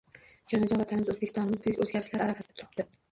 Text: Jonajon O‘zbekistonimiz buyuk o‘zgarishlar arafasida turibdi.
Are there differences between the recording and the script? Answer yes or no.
yes